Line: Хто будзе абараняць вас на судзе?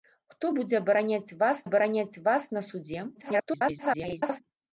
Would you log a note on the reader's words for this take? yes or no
yes